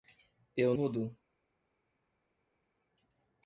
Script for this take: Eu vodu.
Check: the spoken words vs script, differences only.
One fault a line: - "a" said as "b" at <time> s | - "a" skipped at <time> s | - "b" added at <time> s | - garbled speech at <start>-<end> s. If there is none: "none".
none